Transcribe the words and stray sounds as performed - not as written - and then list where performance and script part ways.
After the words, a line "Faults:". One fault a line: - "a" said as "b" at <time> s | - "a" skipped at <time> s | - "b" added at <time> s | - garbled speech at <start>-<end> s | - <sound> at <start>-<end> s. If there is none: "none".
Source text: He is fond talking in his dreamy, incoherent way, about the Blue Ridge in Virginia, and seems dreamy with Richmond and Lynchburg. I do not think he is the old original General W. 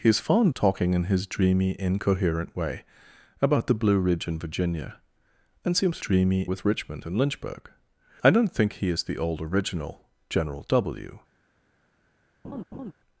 He is fond talking in his dreamy, incoherent way, about the Blue Ridge in Virginia, and seems dreamy with Richmond and Lynchburg. I do not think he is the old original General W.
Faults:
- laugh at 12.4-12.9 s